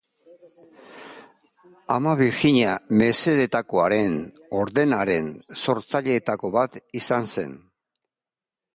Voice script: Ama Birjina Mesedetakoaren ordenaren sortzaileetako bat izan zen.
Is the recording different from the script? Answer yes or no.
no